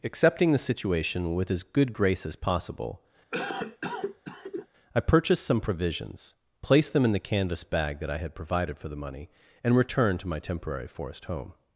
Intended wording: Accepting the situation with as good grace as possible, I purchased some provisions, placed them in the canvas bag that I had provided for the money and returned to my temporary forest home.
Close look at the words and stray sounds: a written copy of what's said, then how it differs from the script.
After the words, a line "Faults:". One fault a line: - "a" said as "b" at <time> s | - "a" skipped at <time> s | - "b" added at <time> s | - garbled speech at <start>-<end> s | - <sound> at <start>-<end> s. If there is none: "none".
Accepting the situation with as good grace as possible, I purchased some provisions, placed them in the canvas bag that I had provided for the money and returned to my temporary forest home.
Faults:
- cough at 3.3-4.7 s